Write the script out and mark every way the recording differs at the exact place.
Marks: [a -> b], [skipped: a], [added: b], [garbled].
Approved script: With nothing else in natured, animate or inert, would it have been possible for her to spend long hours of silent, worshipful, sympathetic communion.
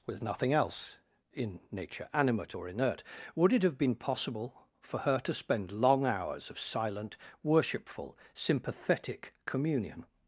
With nothing else in [natured, -> nature] animate or inert, would it have been possible for her to spend long hours of silent, worshipful, sympathetic communion.